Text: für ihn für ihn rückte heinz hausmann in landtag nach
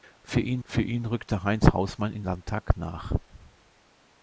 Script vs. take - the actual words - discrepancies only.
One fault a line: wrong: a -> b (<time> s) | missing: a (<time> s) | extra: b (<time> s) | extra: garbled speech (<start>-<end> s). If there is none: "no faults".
no faults